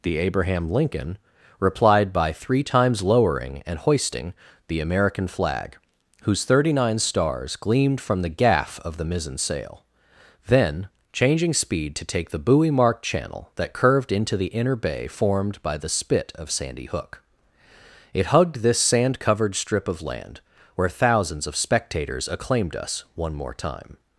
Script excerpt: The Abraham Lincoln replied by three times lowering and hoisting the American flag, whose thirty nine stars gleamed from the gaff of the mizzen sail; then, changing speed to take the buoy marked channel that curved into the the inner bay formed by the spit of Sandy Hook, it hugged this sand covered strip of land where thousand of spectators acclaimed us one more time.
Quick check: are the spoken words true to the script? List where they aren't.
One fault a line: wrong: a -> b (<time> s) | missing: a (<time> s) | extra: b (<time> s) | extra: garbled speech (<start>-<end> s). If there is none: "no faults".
missing: the (14.5 s)
wrong: thousand -> thousands (20.9 s)